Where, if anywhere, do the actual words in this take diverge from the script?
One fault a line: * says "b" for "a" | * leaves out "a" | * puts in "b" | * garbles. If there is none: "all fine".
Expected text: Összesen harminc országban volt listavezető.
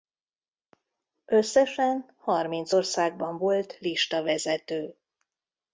all fine